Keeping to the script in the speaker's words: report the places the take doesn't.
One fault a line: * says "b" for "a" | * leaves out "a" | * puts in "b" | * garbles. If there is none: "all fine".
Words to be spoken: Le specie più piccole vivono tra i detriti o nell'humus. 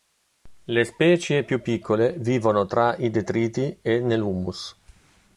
* says "e" for "o"